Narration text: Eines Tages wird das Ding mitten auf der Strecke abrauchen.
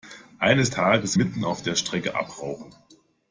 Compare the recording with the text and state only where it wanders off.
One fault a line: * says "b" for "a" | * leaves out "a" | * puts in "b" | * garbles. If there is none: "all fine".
* leaves out "wird das Ding"